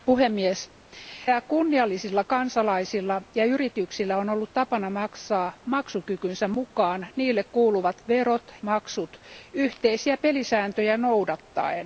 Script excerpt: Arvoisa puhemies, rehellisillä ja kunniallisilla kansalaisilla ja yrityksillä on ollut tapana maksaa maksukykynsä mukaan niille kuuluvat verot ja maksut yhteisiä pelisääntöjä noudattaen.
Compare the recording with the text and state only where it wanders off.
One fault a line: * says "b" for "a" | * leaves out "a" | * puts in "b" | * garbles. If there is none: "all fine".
* leaves out "rehellisillä"
* leaves out "ja"